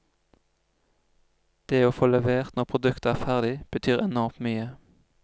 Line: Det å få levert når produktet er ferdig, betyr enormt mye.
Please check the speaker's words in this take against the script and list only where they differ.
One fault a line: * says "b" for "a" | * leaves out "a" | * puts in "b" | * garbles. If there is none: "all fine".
all fine